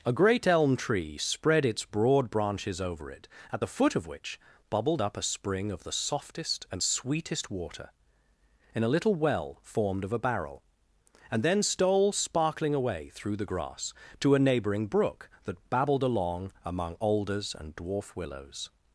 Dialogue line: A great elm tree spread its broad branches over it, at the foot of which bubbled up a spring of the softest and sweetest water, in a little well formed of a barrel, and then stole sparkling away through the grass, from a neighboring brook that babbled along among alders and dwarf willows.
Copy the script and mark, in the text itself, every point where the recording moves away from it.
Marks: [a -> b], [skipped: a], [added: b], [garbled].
A great elm tree spread its broad branches over it, at the foot of which bubbled up a spring of the softest and sweetest water, in a little well formed of a barrel, and then stole sparkling away through the grass, [from -> to] a neighboring brook that babbled along among alders and dwarf willows.